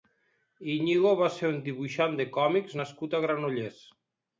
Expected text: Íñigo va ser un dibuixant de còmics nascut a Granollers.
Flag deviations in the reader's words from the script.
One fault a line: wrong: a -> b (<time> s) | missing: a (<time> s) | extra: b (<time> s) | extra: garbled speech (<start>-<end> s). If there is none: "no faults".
no faults